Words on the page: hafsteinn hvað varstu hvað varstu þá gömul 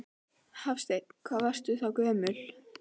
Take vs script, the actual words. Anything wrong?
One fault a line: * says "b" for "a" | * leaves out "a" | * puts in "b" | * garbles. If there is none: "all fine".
* leaves out "hvað varstu"